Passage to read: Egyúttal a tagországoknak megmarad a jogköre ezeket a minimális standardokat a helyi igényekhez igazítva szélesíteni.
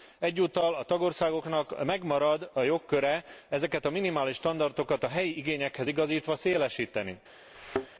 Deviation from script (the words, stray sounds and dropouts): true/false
true